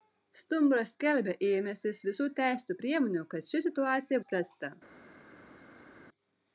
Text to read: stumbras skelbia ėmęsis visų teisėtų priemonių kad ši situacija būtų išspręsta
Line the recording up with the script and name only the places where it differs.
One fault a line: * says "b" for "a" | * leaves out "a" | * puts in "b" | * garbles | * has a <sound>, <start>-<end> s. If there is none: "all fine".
* leaves out "būtų"